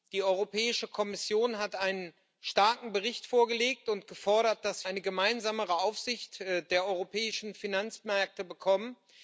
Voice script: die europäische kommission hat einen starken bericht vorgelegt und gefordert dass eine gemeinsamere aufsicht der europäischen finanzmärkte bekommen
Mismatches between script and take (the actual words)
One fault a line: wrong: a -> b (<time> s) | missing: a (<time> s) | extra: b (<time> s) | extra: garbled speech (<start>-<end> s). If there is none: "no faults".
no faults